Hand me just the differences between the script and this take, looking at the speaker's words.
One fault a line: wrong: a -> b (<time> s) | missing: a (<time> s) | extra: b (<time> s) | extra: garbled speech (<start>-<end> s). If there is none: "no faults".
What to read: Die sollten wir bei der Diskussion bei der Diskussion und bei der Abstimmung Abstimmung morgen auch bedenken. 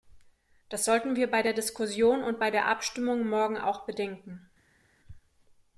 wrong: Die -> Das (0.7 s)
missing: bei der Diskussion (2.2 s)
missing: Abstimmung (3.3 s)